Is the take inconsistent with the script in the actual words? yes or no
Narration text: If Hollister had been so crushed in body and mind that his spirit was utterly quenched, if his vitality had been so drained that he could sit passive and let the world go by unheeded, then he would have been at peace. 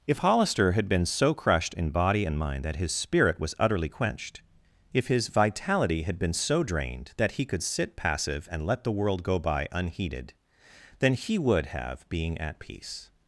yes